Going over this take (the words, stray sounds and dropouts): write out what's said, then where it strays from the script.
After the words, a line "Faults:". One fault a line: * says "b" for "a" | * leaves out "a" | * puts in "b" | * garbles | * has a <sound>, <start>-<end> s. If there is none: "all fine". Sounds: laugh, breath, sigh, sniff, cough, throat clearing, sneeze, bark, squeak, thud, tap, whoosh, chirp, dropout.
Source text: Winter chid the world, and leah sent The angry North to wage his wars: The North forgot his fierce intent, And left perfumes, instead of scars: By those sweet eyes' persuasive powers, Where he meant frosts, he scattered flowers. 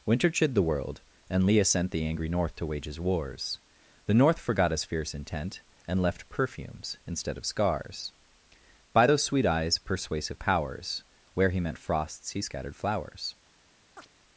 Winter chid the world, and leah sent The angry North to wage his wars: The North forgot his fierce intent, And left perfumes, instead of scars: By those sweet eyes' persuasive powers, Where he meant frosts, he scattered flowers.
Faults:
* has a chirp, 14.0-14.1 s